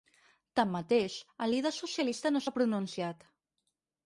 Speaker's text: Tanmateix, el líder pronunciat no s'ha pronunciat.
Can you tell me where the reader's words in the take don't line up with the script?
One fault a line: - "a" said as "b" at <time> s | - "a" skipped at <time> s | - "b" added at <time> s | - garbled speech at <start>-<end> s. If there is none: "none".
- "pronunciat" said as "socialista" at 1.8 s